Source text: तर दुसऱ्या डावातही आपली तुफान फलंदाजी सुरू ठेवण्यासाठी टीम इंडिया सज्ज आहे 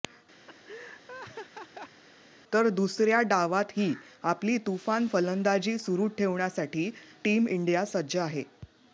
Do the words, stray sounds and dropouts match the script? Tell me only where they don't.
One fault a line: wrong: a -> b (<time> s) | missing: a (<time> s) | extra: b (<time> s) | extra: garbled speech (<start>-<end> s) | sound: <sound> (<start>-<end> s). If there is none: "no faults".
sound: laugh (0.5-2.0 s)